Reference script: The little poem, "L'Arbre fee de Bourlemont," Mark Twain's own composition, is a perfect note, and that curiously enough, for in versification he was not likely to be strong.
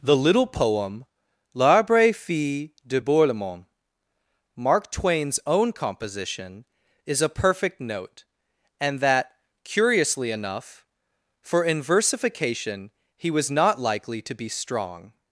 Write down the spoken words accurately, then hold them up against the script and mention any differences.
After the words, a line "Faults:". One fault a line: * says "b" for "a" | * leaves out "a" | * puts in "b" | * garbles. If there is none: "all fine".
The little poem, "L'Arbre fee de Bourlemont," Mark Twain's own composition, is a perfect note, and that curiously enough, for in versification he was not likely to be strong.
Faults:
all fine